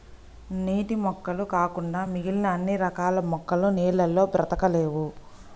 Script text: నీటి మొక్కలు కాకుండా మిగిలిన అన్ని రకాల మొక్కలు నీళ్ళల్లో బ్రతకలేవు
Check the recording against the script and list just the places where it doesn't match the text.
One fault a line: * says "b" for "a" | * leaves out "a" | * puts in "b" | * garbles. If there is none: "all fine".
all fine